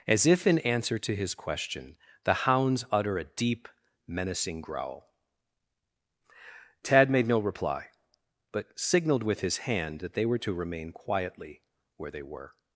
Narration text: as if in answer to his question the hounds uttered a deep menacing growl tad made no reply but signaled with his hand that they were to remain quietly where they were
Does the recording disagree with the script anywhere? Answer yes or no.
yes